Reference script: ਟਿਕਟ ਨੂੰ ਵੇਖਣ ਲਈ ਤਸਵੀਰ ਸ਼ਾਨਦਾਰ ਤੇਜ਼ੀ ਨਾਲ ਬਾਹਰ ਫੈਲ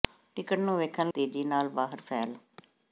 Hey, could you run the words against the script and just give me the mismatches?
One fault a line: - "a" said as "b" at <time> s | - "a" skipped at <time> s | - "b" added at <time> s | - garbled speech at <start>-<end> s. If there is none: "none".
- "ਲਈ ਤਸਵੀਰ ਸ਼ਾਨਦਾਰ" skipped at 1.1 s